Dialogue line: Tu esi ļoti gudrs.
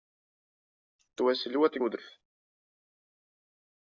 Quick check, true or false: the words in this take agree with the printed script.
true